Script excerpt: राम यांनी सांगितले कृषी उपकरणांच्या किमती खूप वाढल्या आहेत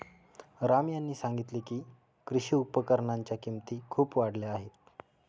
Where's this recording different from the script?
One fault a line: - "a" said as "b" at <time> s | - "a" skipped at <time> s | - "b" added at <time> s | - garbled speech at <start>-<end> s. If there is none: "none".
- "की" added at 1.6 s